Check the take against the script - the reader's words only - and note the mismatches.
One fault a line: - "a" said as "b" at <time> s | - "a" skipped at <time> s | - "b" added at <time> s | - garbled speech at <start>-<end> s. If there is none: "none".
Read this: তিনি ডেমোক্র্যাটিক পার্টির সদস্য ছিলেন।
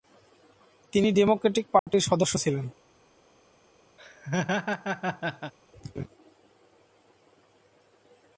none